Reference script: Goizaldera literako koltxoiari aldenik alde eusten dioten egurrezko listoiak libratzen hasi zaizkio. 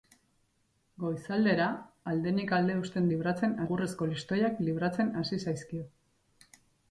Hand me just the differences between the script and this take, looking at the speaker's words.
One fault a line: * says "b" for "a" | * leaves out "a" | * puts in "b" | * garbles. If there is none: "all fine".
* leaves out "literako koltxoiari"
* says "libratzen" for "dioten"